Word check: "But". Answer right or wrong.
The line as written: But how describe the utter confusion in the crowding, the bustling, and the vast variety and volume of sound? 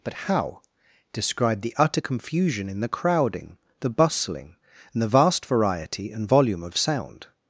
right